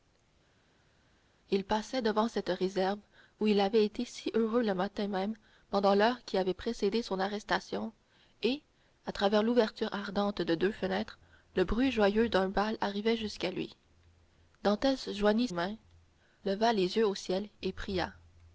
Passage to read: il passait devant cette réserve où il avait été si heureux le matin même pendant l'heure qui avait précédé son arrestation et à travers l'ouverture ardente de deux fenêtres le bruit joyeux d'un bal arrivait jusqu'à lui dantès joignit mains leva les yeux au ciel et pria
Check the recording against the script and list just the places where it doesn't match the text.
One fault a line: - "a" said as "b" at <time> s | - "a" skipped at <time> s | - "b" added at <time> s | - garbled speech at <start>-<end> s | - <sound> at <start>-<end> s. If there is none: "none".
none